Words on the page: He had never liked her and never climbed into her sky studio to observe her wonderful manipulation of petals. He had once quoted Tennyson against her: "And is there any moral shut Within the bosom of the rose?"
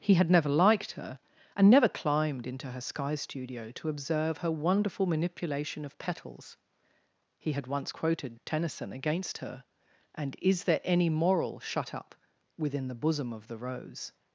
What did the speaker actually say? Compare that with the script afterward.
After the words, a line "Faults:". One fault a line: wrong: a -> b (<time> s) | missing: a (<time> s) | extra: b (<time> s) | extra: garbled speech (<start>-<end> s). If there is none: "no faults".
He had never liked her and never climbed into her sky studio to observe her wonderful manipulation of petals. He had once quoted Tennyson against her: "And is there any moral shut up Within the bosom of the rose?"
Faults:
extra: up (11.9 s)